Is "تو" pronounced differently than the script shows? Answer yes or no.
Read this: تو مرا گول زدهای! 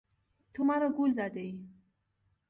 no